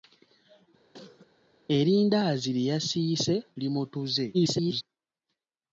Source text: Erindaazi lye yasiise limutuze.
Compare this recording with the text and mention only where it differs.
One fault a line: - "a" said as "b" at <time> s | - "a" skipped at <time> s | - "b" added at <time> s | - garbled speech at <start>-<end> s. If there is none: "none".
- garbled speech at 4.3-4.8 s